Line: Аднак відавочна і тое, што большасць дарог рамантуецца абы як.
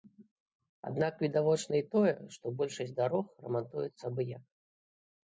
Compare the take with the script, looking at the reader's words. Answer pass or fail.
pass